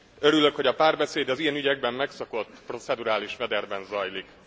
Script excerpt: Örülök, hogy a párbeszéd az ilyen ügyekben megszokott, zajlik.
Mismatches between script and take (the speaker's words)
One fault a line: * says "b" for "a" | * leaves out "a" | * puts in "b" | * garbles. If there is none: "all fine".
* puts in "procedurális mederben"